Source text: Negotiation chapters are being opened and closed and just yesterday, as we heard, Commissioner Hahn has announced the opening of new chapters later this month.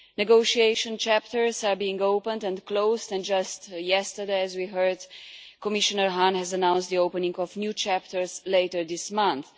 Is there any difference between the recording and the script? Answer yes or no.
no